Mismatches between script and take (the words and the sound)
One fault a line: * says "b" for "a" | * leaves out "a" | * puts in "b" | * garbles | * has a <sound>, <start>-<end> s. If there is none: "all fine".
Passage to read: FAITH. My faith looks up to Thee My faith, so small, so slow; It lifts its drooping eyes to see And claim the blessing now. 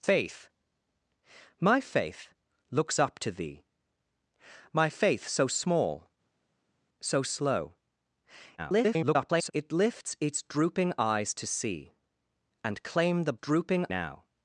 * garbles
* says "drooping" for "blessing"